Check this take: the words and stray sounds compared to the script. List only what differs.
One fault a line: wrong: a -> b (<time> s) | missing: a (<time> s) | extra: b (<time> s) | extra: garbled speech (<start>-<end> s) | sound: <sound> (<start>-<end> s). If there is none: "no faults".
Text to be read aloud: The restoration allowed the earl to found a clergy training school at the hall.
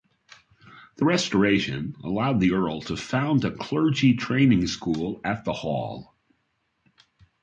no faults